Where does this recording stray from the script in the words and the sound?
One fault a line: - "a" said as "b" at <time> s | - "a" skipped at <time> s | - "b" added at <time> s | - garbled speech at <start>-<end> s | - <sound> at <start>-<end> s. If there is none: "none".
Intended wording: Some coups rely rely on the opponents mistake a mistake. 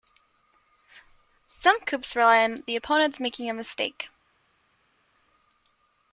- "rely" skipped at 2.4 s
- "mistake" said as "making" at 3.2 s